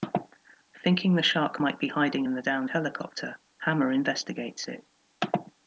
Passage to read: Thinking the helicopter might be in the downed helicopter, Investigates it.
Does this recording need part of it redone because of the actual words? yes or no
yes